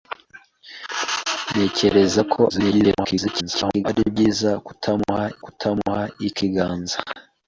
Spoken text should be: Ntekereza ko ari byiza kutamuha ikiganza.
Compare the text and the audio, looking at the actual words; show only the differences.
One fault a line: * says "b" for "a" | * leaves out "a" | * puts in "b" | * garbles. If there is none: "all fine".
* garbles
* puts in "kutamuha"